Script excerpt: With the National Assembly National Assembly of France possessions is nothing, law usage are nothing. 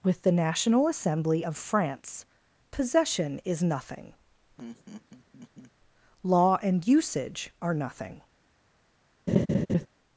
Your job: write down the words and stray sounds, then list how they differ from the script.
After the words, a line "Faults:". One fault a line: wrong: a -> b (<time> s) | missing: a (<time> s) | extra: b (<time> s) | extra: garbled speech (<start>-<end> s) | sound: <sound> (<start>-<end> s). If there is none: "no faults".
With the National Assembly of France possession is nothing, law and usage are nothing.
Faults:
missing: National Assembly (1.4 s)
wrong: possessions -> possession (2.7 s)
sound: laugh (4.6-5.7 s)
extra: and (6.6 s)
sound: laugh (9.3-9.9 s)